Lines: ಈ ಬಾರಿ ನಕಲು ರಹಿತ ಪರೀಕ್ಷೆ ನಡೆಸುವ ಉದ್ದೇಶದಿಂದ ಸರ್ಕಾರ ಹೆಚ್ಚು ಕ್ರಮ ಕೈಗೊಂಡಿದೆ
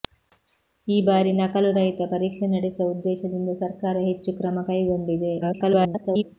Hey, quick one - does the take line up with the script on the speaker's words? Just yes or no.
no